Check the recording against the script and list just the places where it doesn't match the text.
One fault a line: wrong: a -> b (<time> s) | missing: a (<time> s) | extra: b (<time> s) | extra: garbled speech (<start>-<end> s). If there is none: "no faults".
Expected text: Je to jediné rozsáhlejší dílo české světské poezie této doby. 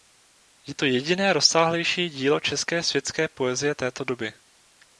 no faults